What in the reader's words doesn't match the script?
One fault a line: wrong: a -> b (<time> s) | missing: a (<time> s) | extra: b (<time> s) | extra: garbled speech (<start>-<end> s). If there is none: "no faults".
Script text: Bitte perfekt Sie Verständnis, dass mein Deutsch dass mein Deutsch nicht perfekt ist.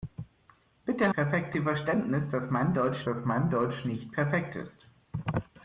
no faults